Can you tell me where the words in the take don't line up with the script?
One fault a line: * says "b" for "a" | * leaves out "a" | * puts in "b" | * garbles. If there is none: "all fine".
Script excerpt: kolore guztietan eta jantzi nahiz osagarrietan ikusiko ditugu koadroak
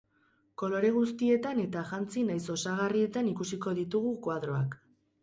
all fine